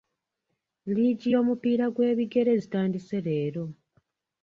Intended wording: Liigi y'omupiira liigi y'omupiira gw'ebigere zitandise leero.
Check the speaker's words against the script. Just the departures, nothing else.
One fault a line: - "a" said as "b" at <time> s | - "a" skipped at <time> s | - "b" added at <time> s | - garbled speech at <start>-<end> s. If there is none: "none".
- "liigi y'omupiira" skipped at 1.8 s